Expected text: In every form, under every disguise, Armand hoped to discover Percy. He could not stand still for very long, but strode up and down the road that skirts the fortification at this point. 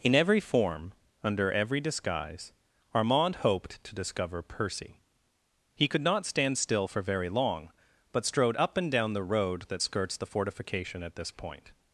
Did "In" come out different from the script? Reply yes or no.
no